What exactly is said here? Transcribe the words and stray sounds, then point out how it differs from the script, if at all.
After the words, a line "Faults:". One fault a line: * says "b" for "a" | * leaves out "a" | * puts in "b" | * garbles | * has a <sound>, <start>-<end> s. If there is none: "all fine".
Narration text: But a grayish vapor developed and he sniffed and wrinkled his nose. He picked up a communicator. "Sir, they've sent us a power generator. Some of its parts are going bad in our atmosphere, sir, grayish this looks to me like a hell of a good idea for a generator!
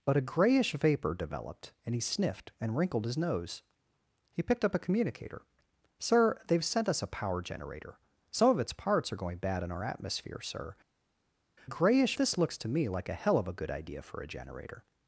But a grayish vapor developed and he sniffed and wrinkled his nose. He picked up a communicator. "Sir, they've sent us a power generator. Some of its parts are going bad in our atmosphere, sir, grayish this looks to me like a hell of a good idea for a generator!
Faults:
all fine